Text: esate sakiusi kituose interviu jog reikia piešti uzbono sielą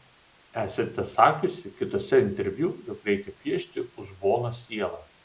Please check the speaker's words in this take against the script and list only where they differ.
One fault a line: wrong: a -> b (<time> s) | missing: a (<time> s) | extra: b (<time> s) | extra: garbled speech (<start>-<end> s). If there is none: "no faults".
no faults